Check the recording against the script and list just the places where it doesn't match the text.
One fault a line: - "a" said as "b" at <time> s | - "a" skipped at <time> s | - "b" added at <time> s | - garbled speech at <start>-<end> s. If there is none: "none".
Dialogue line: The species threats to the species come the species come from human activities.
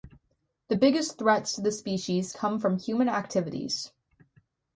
- "species" said as "biggest" at 0.7 s
- "the species come" skipped at 2.6 s